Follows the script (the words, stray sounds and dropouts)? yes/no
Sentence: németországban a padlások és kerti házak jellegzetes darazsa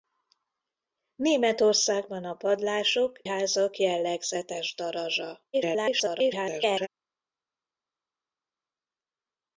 no